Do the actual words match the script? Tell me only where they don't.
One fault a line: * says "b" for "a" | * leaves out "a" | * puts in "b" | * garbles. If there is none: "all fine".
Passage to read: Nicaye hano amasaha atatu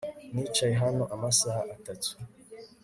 all fine